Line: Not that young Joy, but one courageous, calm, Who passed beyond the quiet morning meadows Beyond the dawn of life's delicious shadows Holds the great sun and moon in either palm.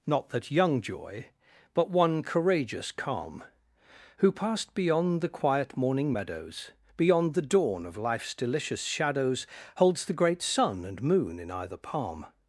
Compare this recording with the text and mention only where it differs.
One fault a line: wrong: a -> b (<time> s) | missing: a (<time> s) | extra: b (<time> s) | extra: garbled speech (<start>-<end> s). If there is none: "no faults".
no faults